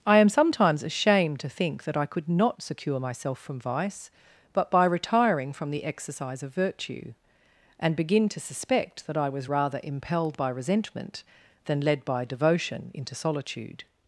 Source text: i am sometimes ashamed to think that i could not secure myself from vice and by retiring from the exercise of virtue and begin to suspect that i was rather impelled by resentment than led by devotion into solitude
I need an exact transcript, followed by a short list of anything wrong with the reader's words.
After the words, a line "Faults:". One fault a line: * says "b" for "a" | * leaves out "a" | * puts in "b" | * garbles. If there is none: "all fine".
i am sometimes ashamed to think that i could not secure myself from vice but by retiring from the exercise of virtue and begin to suspect that i was rather impelled by resentment than led by devotion into solitude
Faults:
* says "but" for "and"